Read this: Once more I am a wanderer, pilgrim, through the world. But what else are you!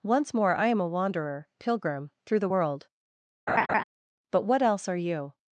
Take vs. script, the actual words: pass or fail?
pass